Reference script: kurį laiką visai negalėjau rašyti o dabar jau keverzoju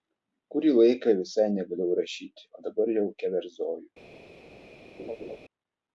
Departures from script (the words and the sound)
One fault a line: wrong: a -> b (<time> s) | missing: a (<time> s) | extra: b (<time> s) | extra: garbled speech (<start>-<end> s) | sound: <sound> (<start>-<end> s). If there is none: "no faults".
sound: laugh (5.0-5.4 s)